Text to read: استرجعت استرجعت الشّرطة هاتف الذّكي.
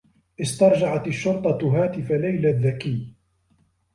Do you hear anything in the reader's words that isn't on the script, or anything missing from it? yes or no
yes